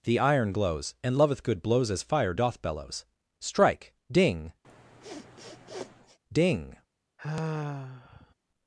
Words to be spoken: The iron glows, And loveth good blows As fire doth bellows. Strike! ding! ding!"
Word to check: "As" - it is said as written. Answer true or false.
true